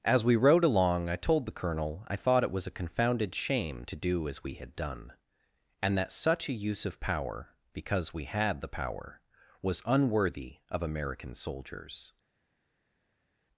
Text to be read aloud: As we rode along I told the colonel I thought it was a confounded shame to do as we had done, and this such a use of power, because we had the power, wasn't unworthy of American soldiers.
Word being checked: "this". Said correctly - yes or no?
no